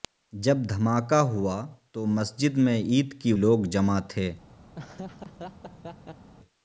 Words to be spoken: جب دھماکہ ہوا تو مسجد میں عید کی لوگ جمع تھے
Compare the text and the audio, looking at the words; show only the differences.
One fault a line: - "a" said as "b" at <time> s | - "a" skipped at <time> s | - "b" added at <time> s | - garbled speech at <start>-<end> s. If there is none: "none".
none